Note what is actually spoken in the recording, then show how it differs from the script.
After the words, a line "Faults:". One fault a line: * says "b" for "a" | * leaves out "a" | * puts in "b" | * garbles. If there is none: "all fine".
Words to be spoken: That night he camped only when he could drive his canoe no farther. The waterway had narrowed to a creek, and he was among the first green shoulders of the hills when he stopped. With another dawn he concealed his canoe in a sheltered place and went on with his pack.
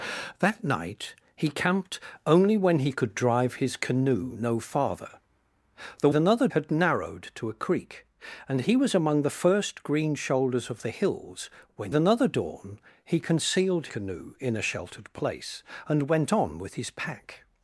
That night he camped only when he could drive his canoe no farther. The another had narrowed to a creek, and he was among the first green shoulders of the hills when another dawn he concealed canoe in a sheltered place and went on with his pack.
Faults:
* says "another" for "waterway"
* leaves out "he stopped With"
* leaves out "his"